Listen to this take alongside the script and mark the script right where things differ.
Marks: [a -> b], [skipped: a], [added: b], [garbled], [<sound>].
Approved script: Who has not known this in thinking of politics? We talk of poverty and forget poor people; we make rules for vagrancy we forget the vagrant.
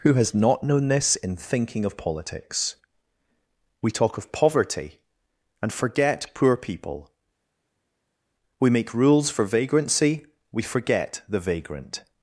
Who has not known this in thinking of politics? We talk of poverty and forget poor people; we make rules for vagrancy we forget the vagrant.